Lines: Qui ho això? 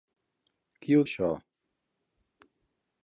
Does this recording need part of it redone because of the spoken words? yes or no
no